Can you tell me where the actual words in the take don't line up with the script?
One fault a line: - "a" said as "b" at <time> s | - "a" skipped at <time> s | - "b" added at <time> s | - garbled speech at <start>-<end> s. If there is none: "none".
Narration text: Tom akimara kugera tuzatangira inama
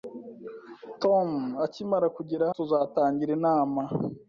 none